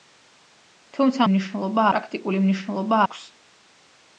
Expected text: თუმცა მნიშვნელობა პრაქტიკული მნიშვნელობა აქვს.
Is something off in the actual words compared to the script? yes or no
no